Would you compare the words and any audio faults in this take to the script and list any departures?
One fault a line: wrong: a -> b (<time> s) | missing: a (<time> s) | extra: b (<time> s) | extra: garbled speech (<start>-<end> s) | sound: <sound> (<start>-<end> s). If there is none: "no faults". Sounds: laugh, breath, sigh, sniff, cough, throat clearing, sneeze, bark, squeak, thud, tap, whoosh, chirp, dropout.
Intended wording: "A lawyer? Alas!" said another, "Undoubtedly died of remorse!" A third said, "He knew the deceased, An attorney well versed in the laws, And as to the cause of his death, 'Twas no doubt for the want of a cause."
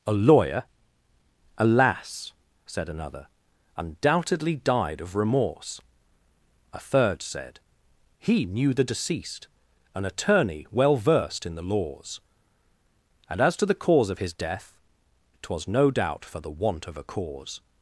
no faults